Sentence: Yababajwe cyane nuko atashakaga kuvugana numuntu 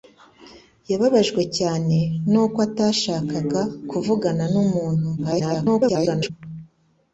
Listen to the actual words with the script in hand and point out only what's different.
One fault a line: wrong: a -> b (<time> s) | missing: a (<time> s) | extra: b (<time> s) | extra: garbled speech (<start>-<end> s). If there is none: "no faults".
extra: garbled speech (5.2-6.3 s)